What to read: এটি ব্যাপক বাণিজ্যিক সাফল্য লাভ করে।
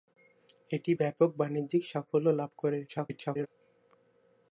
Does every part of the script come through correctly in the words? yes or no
no